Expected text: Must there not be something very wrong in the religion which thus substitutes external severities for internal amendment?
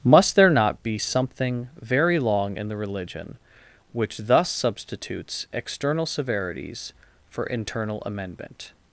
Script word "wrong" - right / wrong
wrong